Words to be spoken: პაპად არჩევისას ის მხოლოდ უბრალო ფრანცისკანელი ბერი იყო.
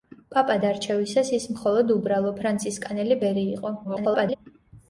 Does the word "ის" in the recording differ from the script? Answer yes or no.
no